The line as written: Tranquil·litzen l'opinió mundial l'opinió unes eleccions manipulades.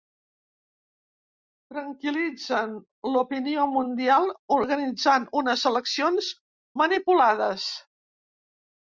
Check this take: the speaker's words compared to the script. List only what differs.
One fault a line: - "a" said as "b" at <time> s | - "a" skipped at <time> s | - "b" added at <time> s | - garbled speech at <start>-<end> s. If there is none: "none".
- "l'opinió" said as "organitzant" at 4.5 s